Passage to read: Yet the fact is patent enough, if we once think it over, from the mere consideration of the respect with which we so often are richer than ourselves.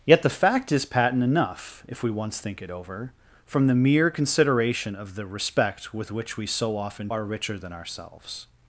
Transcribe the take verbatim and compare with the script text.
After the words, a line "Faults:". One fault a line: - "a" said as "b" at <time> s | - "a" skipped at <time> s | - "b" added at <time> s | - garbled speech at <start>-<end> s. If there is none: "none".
Yet the fact is patent enough, if we once think it over, from the mere consideration of the respect with which we so often are richer than ourselves.
Faults:
none